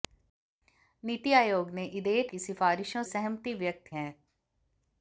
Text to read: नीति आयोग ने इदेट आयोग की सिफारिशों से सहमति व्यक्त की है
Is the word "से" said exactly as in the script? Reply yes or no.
no